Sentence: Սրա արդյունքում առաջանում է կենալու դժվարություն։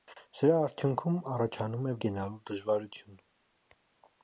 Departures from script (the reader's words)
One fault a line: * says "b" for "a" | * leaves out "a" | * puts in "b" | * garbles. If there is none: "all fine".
all fine